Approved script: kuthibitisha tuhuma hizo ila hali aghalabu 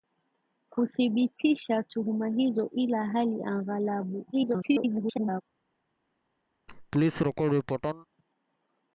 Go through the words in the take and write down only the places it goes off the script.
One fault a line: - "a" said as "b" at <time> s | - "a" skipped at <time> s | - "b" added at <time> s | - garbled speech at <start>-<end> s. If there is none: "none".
- garbled speech at 4.3-5.4 s